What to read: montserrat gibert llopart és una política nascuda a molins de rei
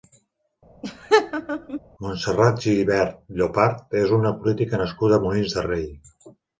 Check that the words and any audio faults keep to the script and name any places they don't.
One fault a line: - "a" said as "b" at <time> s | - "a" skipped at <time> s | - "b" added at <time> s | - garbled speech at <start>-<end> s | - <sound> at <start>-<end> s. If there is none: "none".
- laugh at 0.8-1.8 s